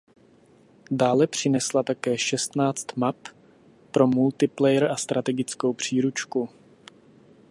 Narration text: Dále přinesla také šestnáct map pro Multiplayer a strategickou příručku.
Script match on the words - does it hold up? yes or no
yes